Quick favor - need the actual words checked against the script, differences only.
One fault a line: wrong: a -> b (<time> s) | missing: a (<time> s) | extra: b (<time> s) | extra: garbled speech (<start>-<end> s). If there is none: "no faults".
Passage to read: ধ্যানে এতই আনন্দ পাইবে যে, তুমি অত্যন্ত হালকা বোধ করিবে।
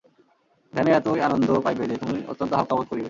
no faults